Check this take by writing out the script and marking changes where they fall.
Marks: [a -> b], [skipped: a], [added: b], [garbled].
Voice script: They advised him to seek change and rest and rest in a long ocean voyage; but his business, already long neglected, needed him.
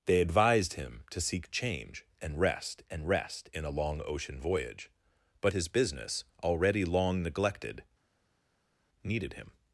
They advised him to seek change and rest and rest in a long ocean voyage; but his business, already long neglected, needed him.